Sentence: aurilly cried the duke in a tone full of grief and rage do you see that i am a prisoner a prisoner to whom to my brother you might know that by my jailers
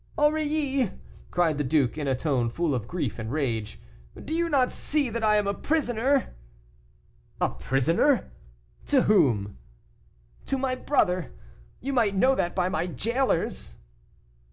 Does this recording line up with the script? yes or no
no